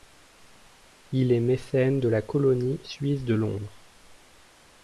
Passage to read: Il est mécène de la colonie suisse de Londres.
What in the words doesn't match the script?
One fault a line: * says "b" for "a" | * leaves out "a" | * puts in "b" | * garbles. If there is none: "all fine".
all fine